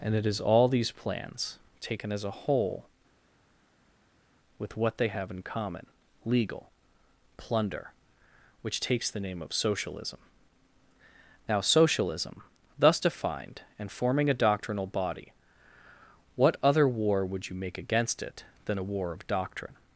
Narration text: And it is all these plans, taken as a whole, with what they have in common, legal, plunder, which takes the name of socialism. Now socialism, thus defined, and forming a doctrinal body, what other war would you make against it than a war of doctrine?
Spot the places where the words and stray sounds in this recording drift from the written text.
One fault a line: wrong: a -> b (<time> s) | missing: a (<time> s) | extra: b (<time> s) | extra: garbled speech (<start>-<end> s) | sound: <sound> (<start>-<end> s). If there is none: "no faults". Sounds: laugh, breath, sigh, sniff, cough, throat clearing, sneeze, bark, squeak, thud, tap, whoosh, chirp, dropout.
no faults